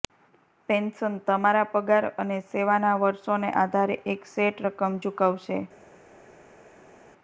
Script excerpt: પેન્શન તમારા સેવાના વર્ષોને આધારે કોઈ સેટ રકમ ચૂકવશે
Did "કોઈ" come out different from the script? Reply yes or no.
yes